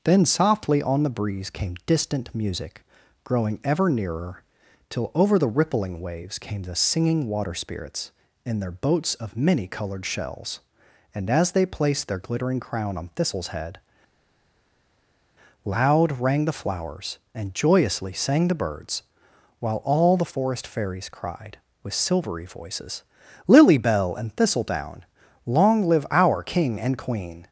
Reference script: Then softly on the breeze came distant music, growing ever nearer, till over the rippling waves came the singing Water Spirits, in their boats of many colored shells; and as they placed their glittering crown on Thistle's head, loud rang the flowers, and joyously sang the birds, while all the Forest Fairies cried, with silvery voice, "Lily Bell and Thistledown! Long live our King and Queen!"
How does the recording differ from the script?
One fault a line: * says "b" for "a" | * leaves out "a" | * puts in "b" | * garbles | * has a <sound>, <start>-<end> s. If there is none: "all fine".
* says "voices" for "voice"